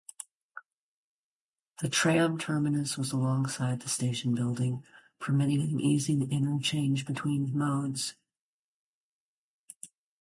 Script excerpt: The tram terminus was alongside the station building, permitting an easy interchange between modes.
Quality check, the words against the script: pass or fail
pass